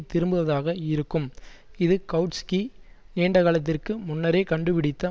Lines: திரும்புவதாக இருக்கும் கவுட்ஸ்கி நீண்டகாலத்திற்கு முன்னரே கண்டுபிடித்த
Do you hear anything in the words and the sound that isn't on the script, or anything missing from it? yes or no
yes